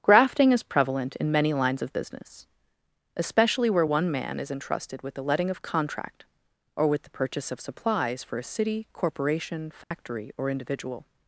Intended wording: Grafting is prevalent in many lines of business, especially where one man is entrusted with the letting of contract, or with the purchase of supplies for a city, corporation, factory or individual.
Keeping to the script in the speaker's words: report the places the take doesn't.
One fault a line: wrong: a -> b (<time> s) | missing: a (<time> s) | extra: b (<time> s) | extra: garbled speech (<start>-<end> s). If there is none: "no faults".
no faults